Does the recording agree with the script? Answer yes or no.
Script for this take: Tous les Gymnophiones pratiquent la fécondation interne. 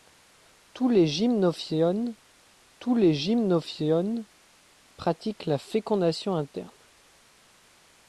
no